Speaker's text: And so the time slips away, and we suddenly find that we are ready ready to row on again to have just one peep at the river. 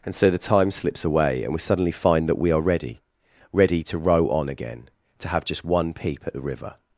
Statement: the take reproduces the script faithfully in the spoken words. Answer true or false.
true